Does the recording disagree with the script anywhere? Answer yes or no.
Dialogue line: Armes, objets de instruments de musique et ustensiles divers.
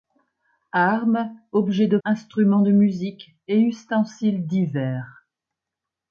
no